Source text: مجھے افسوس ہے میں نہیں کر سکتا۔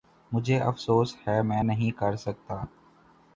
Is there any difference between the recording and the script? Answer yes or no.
no